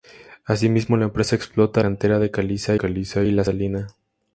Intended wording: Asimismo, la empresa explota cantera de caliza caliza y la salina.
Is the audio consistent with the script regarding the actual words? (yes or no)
yes